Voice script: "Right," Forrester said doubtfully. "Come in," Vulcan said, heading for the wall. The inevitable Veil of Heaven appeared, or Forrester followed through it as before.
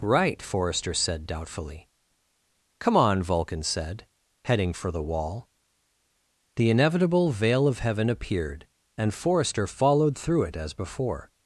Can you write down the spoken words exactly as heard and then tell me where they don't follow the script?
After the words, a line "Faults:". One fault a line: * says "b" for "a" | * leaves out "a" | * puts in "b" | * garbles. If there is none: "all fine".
"Right," Forrester said doubtfully. "Come on," Vulcan said, heading for the wall. The inevitable Veil of Heaven appeared, and Forrester followed through it as before.
Faults:
* says "on" for "in"
* says "and" for "or"